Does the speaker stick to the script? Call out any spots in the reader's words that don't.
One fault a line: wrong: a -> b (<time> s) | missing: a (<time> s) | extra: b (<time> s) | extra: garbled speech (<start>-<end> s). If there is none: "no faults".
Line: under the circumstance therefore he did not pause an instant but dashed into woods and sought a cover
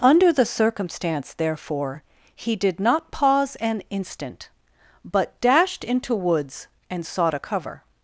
no faults